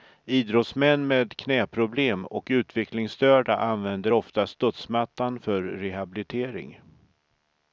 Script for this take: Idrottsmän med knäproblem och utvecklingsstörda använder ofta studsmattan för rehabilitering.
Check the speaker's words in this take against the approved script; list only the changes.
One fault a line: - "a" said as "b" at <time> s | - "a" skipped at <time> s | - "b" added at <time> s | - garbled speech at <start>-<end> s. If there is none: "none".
none